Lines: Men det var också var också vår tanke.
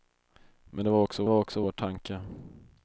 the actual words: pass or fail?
pass